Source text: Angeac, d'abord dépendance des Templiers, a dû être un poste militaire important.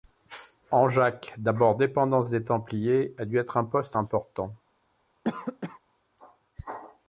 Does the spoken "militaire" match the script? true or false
false